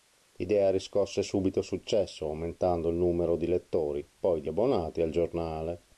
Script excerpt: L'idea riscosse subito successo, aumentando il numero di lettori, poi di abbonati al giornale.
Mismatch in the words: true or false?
false